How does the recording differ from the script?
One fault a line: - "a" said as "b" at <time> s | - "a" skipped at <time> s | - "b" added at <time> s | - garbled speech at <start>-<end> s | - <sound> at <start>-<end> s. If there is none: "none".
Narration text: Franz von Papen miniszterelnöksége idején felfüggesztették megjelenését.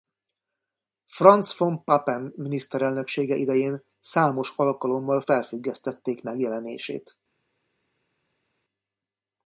- "számos alkalommal" added at 4.0 s